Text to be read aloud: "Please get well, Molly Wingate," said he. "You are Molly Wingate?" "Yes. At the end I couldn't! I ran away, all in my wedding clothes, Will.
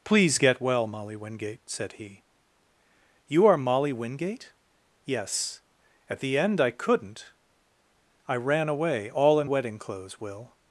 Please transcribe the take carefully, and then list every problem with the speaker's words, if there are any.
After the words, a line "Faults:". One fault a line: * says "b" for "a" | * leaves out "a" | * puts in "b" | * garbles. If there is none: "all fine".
"Please get well, Molly Wingate," said he. "You are Molly Wingate?" "Yes. At the end I couldn't! I ran away, all in wedding clothes, Will.
Faults:
* leaves out "my"